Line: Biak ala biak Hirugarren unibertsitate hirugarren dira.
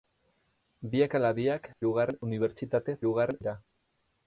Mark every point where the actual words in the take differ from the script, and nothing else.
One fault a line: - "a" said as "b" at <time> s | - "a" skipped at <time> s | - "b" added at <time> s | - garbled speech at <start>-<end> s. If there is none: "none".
none